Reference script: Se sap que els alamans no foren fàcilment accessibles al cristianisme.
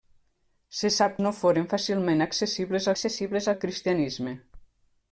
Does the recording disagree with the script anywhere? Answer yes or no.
yes